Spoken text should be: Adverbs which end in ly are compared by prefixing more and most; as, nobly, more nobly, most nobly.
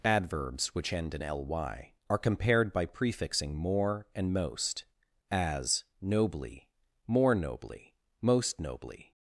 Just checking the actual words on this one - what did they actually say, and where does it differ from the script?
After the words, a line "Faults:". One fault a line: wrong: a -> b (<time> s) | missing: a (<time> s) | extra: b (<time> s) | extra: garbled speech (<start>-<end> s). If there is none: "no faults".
Adverbs which end in ly are compared by prefixing more and most; as, nobly, more nobly, most nobly.
Faults:
no faults